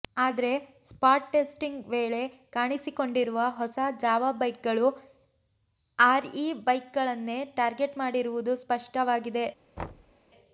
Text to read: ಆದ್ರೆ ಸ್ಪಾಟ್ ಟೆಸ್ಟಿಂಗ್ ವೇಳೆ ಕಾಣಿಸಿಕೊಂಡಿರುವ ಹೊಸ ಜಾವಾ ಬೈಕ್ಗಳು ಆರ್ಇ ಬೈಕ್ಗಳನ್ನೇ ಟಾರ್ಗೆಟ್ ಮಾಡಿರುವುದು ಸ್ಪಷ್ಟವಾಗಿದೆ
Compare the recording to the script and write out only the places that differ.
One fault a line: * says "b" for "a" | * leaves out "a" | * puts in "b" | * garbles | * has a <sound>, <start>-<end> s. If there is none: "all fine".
* has a thud, 9.8-10.1 s